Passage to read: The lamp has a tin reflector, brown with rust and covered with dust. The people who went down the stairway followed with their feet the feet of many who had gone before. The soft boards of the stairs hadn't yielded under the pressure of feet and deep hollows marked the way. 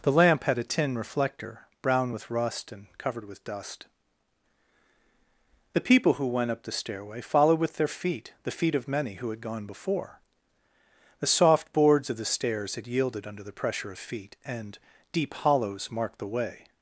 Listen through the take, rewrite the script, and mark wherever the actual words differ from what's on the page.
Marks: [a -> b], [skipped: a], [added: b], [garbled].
The lamp [has -> had] a tin reflector, brown with rust and covered with dust. The people who went [down -> up] the stairway followed with their feet the feet of many who had gone before. The soft boards of the stairs [hadn't -> had] yielded under the pressure of feet and deep hollows marked the way.